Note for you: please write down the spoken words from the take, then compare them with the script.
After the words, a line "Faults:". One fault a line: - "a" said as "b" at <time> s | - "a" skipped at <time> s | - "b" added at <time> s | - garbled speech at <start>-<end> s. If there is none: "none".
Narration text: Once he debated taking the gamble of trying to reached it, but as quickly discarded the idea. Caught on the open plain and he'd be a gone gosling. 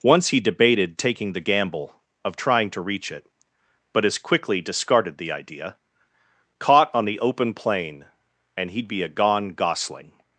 Once he debated taking the gamble of trying to reach it, but as quickly discarded the idea. Caught on the open plain and he'd be a gone gosling.
Faults:
- "reached" said as "reach" at 2.8 s